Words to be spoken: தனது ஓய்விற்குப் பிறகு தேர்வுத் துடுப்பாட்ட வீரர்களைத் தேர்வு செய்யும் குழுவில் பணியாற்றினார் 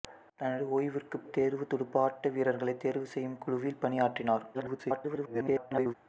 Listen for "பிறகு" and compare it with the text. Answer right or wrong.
wrong